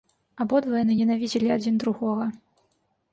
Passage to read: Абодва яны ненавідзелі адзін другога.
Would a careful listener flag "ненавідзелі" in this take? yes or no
no